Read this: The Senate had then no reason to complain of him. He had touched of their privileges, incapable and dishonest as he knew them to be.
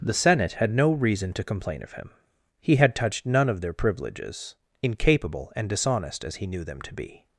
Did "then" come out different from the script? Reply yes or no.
yes